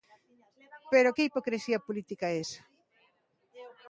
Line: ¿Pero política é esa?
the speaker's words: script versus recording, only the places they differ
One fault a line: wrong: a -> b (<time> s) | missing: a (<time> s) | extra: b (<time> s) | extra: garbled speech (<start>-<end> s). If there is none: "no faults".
extra: que hipocrisía (1.1 s)